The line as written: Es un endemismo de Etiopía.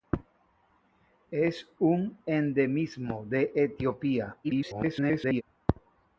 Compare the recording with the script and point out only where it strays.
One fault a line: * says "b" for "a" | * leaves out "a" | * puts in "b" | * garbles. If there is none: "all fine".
* garbles